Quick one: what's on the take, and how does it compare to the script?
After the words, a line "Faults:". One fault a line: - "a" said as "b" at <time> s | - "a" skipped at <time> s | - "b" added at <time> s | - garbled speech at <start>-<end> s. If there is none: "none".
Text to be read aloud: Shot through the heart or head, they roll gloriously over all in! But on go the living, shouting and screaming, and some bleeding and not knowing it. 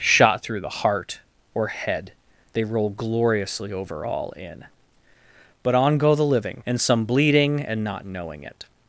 Shot through the heart or head, they roll gloriously over all in! But on go the living, and some bleeding and not knowing it.
Faults:
- "shouting and screaming" skipped at 6.6 s